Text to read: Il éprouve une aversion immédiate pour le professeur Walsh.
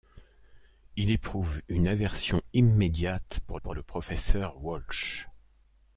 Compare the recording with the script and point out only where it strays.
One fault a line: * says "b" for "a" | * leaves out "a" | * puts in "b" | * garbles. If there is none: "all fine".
* puts in "pour"